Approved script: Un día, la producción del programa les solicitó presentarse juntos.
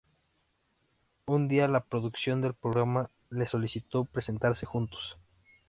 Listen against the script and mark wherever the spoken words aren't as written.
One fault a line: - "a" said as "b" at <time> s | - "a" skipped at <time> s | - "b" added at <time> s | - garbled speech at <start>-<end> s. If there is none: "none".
none